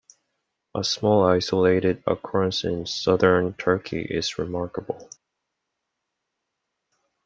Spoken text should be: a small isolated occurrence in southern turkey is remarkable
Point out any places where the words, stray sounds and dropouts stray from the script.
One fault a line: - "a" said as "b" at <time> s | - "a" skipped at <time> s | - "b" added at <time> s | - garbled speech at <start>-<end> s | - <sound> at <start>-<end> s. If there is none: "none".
none